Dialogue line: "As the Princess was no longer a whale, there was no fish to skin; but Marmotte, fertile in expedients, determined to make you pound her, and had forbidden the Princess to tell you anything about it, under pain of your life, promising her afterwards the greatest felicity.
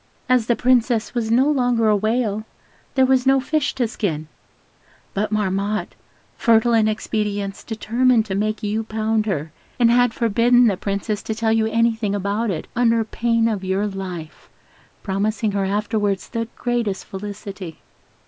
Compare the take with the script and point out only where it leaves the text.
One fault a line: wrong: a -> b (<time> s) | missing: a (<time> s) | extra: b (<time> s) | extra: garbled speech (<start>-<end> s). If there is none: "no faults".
no faults